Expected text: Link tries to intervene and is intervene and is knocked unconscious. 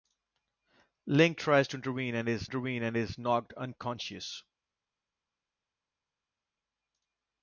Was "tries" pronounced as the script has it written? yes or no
yes